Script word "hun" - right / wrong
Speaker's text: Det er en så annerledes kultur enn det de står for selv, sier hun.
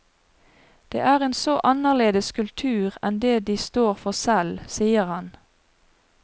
wrong